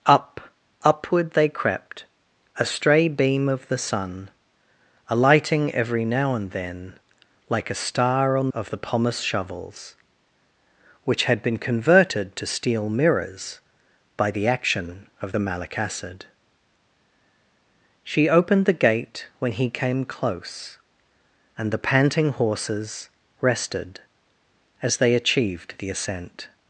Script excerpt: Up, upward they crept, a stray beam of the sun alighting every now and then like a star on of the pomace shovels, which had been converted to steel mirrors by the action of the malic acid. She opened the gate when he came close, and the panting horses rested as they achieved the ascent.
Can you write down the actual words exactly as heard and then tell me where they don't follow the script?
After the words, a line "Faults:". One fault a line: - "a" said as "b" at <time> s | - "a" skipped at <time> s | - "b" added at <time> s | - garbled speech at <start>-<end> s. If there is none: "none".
Up, upward they crept, a stray beam of the sun alighting every now and then like a star on of the pomace shovels, which had been converted to steel mirrors by the action of the malic acid. She opened the gate when he came close, and the panting horses rested as they achieved the ascent.
Faults:
none